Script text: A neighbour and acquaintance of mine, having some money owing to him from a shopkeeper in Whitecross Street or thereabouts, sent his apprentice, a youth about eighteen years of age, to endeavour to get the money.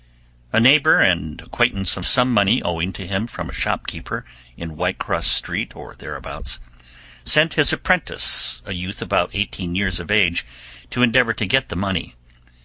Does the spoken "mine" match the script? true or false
false